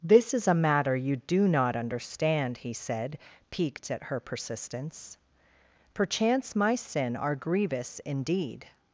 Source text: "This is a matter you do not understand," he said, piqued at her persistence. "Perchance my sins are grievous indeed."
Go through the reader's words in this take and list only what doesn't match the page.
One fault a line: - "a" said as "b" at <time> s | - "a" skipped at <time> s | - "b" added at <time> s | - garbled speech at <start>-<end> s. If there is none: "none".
- "sins" said as "sin" at 6.8 s